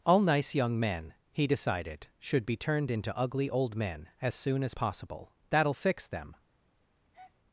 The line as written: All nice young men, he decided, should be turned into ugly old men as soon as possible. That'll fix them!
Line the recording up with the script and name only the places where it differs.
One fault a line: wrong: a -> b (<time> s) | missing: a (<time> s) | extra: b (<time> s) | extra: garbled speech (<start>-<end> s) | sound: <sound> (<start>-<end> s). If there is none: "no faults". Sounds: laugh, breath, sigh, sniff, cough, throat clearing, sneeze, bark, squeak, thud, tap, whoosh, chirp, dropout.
sound: breath (7.1-7.3 s)